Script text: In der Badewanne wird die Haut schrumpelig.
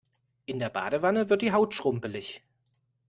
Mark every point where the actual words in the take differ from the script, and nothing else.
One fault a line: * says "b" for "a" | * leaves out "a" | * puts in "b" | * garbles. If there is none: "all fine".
all fine